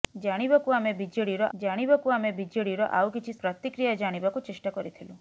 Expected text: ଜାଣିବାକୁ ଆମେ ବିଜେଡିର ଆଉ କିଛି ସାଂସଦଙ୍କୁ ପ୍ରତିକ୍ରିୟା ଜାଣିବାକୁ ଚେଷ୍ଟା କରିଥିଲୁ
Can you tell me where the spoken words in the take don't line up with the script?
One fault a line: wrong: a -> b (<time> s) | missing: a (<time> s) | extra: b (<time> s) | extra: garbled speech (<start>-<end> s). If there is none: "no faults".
extra: ଜାଣିବାକୁ ଆମେ ବିଜେଡିର (1.6 s)
missing: ସାଂସଦଙ୍କୁ (3.4 s)